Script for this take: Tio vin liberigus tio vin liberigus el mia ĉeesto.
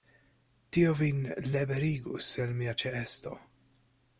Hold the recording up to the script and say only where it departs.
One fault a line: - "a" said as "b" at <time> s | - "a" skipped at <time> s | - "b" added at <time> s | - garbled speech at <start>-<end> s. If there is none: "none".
- "tio vin liberigus" skipped at 2.3 s